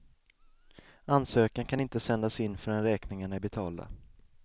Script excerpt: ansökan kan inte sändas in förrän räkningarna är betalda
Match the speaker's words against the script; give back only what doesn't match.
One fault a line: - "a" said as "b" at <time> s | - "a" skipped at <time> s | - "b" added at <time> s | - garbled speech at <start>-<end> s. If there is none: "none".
none